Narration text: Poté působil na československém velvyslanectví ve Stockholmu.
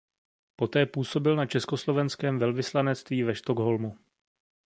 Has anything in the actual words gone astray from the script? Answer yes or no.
no